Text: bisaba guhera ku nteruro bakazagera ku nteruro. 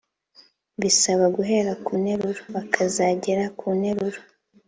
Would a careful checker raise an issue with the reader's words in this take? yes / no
no